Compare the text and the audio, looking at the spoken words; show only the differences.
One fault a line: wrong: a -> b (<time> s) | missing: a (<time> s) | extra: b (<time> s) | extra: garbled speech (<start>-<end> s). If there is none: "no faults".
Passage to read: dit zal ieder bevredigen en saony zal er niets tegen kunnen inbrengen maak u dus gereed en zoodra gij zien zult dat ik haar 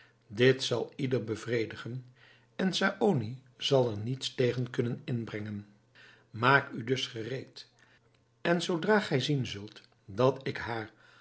no faults